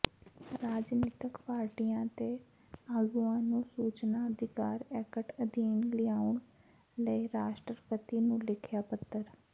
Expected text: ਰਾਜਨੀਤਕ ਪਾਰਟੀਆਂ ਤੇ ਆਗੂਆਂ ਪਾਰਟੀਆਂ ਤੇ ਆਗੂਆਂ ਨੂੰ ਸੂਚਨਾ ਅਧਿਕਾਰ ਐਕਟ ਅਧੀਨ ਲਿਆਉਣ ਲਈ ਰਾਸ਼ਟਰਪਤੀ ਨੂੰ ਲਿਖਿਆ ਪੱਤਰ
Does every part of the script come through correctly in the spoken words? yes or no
no